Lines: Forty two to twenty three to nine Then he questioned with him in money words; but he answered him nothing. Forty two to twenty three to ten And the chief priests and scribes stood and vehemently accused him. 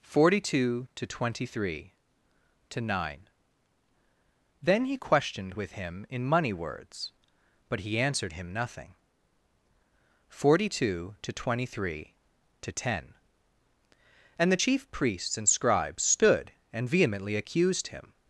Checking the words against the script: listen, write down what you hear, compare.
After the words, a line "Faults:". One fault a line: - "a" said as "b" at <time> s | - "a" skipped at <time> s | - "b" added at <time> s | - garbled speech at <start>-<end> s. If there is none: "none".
Forty two to twenty three to nine Then he questioned with him in money words; but he answered him nothing. Forty two to twenty three to ten And the chief priests and scribes stood and vehemently accused him.
Faults:
none